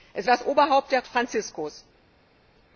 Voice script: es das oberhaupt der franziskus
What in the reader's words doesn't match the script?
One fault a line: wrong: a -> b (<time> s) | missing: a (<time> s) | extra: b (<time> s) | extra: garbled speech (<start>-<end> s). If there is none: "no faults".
no faults